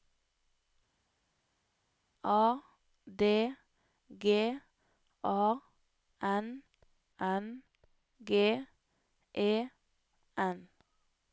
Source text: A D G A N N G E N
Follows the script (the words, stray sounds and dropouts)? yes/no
yes